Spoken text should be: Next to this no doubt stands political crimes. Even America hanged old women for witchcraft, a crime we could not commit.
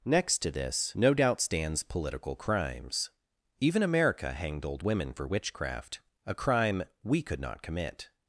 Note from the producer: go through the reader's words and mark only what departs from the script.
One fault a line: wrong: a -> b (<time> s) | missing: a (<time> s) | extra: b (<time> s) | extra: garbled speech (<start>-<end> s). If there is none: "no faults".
no faults